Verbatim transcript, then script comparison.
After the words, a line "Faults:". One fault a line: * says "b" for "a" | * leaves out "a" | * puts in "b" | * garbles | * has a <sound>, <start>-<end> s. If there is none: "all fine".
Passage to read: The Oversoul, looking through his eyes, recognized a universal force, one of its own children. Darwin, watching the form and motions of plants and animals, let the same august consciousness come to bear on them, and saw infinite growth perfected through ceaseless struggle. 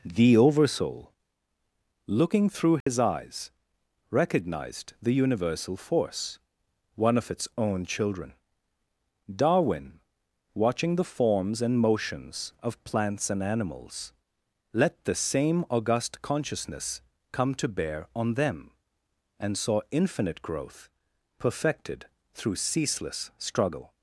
The Oversoul, looking through his eyes, recognized the universal force, one of its own children. Darwin, watching the forms and motions of plants and animals, let the same august consciousness come to bear on them, and saw infinite growth perfected through ceaseless struggle.
Faults:
* has a dropout, 2.8-2.9 s
* says "the" for "a"
* says "forms" for "form"